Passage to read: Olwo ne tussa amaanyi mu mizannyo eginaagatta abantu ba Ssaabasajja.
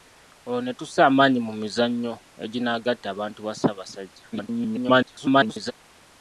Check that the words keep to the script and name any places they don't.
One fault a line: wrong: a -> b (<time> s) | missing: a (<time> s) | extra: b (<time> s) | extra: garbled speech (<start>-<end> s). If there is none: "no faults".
extra: garbled speech (4.3-5.7 s)